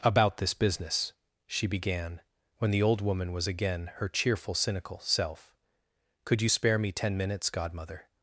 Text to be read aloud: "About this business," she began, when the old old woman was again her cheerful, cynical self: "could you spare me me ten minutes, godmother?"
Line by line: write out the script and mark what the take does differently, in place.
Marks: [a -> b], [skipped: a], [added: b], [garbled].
"About this business," she began, when the old [skipped: old] woman was again her cheerful, cynical self: "could you spare me [skipped: me] ten minutes, godmother?"